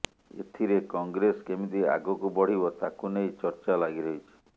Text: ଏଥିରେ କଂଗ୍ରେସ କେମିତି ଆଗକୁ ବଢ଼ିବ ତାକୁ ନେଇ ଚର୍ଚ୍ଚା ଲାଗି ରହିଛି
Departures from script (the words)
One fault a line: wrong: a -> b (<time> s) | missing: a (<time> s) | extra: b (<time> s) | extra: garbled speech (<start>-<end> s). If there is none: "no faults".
no faults